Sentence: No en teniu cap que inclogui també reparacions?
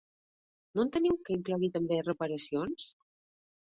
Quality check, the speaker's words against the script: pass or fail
fail